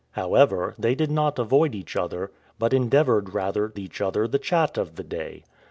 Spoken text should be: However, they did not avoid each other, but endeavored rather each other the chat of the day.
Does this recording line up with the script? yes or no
yes